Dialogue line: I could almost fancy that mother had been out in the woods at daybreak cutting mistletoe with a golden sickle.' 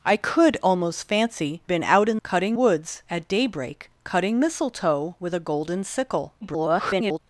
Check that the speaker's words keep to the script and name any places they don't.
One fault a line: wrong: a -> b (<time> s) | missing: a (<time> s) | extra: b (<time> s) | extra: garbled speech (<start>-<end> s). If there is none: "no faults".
missing: that mother had (1.6 s)
wrong: the -> cutting (2.2 s)
extra: garbled speech (6.4-7.2 s)